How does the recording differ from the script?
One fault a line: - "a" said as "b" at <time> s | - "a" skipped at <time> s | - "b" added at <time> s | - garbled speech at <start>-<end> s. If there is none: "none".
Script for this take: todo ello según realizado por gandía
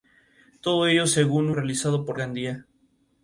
none